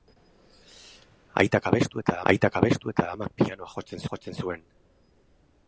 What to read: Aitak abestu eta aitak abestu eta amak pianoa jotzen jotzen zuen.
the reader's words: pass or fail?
pass